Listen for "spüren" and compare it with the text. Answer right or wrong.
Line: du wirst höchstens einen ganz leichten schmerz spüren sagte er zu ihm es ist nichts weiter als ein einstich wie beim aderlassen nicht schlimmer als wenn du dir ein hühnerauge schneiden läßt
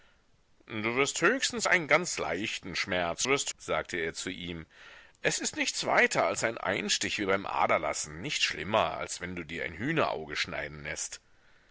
wrong